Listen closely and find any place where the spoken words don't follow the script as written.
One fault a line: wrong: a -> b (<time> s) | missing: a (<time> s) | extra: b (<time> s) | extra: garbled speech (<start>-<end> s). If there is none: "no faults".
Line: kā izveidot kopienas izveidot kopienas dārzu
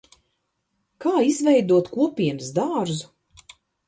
missing: izveidot kopienas (2.5 s)